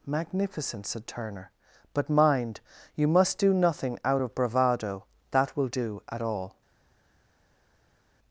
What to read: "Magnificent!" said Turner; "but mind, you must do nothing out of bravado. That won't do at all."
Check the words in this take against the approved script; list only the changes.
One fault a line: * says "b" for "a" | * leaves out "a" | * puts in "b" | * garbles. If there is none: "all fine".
* says "will" for "won't"